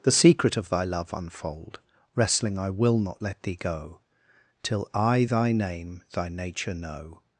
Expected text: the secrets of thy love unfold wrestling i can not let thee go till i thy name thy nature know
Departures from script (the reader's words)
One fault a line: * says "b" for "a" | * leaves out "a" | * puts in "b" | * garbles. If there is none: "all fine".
* says "secret" for "secrets"
* says "will" for "can"